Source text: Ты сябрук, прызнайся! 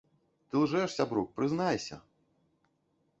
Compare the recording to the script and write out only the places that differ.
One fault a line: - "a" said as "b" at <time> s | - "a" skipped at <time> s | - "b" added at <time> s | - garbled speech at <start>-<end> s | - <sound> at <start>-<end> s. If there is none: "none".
- "лжэш" added at 0.6 s